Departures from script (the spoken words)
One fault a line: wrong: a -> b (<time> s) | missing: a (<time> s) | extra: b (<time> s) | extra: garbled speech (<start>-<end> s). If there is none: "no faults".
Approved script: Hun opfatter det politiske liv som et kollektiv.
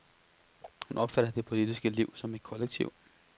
no faults